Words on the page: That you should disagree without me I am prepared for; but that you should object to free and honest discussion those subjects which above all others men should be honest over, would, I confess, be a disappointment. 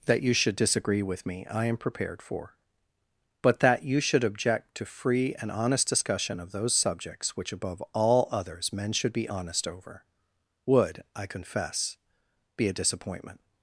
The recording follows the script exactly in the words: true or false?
false